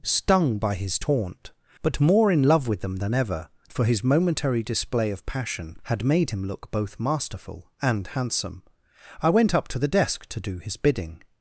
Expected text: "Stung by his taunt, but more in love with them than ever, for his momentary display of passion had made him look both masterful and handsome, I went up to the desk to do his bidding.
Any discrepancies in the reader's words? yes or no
no